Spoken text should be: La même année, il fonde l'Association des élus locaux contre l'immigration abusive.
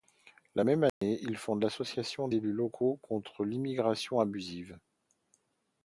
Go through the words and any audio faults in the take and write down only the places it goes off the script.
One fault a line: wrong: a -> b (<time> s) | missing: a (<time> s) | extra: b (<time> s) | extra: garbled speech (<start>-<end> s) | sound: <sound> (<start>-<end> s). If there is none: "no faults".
sound: dropout (0.9-1.0 s)
missing: des (2.3 s)